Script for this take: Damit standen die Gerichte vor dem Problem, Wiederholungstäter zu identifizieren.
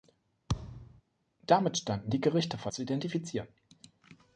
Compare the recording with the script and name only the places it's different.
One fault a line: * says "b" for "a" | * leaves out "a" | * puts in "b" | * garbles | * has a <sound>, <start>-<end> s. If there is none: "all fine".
* has a thud, 0.5-1.0 s
* leaves out "dem Problem Wiederholungstäter"